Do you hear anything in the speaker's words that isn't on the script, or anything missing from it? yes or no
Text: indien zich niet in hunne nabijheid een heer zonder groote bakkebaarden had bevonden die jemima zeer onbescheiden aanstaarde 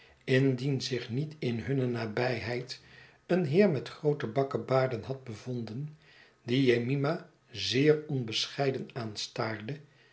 yes